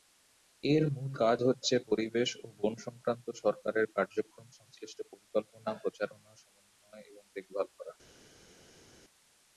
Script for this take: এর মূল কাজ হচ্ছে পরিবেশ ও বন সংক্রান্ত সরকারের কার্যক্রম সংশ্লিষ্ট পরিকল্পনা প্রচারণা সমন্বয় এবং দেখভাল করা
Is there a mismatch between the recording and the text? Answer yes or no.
no